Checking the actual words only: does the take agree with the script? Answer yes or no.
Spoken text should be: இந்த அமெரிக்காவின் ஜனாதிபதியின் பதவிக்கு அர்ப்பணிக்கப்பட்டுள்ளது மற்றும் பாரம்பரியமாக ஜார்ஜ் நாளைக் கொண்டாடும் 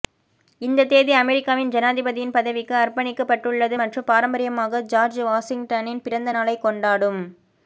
no